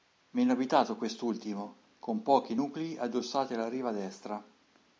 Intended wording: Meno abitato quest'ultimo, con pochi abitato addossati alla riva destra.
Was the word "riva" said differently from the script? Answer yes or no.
no